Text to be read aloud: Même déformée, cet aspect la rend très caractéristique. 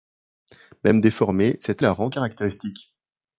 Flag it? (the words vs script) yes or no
yes